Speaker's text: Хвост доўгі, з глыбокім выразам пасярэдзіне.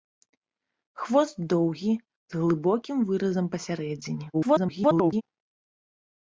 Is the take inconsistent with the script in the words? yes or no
yes